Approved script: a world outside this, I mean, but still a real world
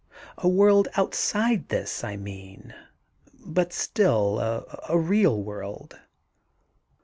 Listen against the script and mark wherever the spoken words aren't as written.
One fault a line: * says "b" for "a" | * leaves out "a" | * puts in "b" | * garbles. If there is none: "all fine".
all fine